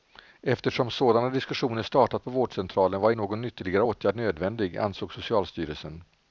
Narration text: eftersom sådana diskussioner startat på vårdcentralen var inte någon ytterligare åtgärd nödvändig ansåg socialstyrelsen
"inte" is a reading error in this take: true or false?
true